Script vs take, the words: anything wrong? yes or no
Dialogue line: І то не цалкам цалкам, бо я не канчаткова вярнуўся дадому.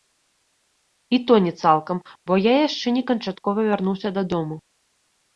yes